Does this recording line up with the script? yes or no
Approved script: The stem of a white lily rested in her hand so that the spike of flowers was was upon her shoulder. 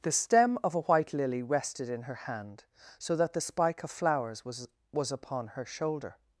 yes